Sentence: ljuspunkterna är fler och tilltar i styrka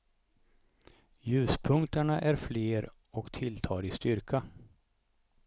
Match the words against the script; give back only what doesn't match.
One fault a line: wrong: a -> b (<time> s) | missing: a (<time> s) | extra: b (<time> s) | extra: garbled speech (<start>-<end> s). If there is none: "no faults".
no faults